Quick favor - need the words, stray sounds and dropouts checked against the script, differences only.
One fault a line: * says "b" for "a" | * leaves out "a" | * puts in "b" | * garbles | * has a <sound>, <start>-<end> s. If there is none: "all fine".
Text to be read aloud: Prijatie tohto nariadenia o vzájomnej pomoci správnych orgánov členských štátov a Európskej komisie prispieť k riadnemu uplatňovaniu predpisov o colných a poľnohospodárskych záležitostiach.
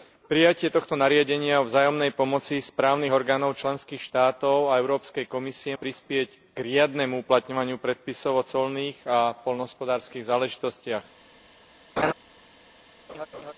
* has a laugh, 12.0-12.1 s
* has a laugh, 13.1-13.5 s